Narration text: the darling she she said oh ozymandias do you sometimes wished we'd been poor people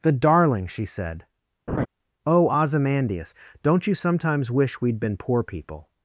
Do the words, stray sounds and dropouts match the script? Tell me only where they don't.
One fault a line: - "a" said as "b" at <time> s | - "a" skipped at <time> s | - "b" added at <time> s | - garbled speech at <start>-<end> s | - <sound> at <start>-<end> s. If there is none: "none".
- "she" skipped at 0.8 s
- laugh at 1.7-1.9 s
- "do" said as "don't" at 3.6 s
- "wished" said as "wish" at 4.5 s